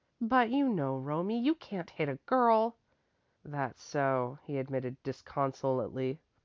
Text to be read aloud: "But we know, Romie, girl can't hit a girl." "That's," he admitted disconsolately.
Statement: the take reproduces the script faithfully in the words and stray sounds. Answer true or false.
false